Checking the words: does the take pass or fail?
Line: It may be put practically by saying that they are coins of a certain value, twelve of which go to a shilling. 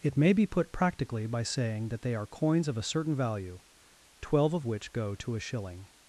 pass